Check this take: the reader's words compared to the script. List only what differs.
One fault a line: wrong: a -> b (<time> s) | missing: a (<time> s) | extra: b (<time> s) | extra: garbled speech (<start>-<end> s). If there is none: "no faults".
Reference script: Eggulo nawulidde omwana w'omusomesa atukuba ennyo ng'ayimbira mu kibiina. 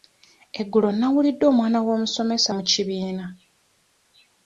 missing: atukuba ennyo ng'ayimbira (2.5 s)